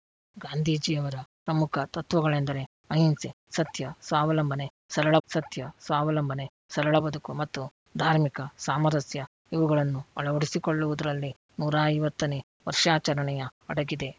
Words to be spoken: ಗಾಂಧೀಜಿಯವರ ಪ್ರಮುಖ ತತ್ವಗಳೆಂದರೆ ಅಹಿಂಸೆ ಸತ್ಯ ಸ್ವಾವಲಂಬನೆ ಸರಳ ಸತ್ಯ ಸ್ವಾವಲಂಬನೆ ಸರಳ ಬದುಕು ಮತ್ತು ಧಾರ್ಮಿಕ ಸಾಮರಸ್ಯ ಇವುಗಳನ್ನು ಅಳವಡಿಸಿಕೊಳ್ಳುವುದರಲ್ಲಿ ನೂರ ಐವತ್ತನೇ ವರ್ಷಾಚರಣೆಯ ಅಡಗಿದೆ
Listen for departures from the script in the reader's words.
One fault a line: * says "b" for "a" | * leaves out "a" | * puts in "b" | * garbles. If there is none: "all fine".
all fine